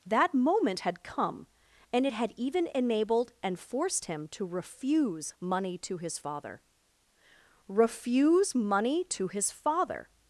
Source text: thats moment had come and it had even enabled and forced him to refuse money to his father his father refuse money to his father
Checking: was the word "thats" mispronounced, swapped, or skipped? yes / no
yes